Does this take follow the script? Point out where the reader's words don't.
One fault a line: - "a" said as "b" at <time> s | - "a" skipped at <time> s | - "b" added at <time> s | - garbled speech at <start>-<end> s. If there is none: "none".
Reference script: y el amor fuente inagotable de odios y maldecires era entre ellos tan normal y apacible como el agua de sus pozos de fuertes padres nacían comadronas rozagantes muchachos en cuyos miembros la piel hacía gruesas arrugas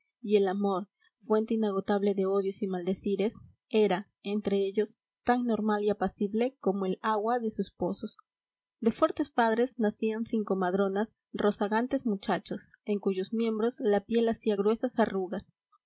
- "sin" added at 10.2 s